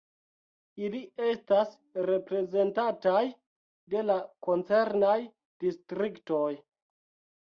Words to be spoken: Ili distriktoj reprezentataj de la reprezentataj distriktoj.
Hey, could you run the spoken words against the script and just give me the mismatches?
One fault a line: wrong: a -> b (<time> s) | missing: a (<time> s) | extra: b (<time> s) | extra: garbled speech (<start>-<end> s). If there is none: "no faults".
wrong: distriktoj -> estas (1.2 s)
wrong: reprezentataj -> koncernaj (4.5 s)